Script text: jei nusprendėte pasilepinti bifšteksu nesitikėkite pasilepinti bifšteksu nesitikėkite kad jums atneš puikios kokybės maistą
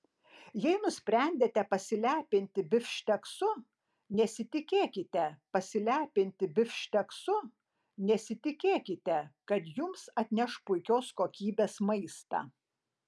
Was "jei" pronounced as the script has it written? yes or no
yes